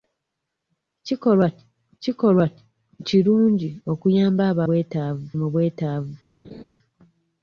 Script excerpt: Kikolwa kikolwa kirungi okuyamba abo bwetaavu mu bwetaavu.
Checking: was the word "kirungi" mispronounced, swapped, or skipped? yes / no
no